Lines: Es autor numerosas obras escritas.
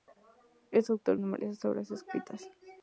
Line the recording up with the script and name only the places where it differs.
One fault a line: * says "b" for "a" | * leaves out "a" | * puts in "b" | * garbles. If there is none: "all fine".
all fine